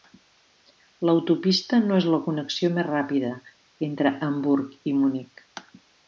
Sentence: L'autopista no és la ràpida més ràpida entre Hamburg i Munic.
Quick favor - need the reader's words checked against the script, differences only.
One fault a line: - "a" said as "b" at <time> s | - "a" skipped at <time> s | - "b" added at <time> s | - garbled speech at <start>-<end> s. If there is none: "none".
- "ràpida" said as "connexió" at 2.3 s